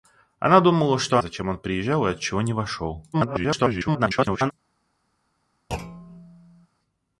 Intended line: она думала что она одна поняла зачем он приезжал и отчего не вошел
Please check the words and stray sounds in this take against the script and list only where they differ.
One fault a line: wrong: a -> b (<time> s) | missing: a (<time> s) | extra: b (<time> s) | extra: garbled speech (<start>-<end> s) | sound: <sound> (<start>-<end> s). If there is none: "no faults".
missing: она одна поняла (1.2 s)
extra: garbled speech (3.1-4.5 s)
sound: thud (5.7-6.7 s)